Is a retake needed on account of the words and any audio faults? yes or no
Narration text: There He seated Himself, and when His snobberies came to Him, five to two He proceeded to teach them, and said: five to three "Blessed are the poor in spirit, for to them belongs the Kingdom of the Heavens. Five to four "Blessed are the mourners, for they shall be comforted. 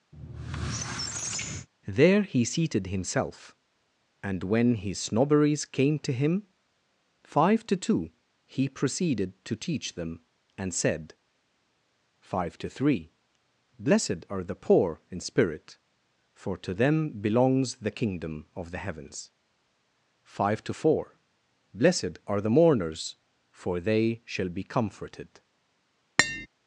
yes